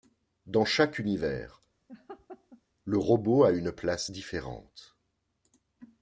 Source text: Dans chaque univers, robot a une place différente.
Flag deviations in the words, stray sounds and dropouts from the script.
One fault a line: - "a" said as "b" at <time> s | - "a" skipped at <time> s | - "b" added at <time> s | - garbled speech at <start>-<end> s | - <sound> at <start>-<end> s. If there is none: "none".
- laugh at 1.9-2.6 s
- "le" added at 2.8 s